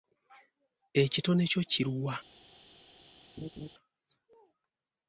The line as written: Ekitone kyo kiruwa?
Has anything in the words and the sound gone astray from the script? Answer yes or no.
yes